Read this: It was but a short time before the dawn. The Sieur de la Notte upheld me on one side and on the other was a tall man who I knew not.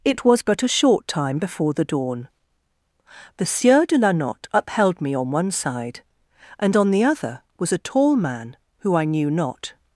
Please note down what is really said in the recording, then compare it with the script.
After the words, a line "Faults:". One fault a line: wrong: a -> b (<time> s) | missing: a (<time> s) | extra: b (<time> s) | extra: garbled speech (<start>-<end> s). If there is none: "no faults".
It was but a short time before the dawn. The Sieur de la Notte upheld me on one side and on the other was a tall man who I knew not.
Faults:
no faults